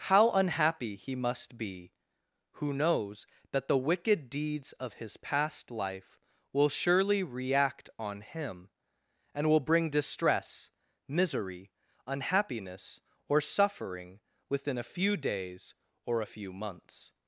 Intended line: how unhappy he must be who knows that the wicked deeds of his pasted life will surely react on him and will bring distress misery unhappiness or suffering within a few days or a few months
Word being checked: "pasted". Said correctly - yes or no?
no